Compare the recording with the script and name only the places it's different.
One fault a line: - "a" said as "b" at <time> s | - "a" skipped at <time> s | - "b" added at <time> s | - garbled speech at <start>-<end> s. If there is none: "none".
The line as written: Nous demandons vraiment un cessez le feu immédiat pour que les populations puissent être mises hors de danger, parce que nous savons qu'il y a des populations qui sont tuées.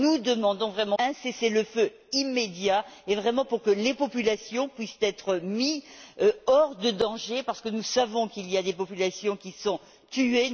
none